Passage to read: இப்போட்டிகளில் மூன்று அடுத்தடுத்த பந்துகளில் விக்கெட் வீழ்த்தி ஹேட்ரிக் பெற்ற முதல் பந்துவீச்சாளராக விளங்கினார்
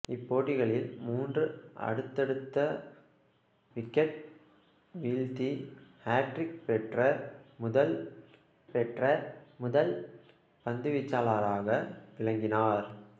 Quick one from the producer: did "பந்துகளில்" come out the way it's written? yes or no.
no